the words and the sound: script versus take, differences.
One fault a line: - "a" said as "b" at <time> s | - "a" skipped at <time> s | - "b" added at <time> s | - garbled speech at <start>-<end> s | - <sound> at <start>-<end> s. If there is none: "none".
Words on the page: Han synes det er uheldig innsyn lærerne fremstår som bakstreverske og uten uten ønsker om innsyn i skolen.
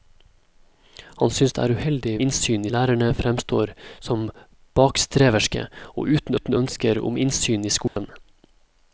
- dropout at 7.9-8.0 s